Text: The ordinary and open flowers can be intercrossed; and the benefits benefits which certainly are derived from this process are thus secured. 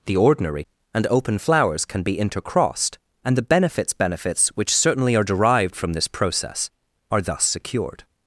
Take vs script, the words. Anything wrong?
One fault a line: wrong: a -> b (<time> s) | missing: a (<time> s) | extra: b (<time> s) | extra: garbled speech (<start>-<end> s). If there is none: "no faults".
no faults